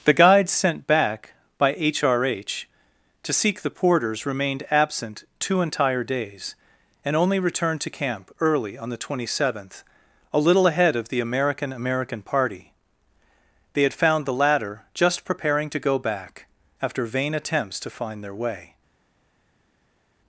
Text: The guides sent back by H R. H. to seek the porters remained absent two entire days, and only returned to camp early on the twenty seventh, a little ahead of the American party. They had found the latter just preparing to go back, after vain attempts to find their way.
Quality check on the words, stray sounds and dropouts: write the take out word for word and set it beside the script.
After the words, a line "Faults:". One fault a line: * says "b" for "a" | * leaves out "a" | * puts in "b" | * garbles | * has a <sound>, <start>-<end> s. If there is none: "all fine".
The guides sent back by H R. H. to seek the porters remained absent two entire days, and only returned to camp early on the twenty seventh, a little ahead of the American American party. They had found the latter just preparing to go back, after vain attempts to find their way.
Faults:
* puts in "American"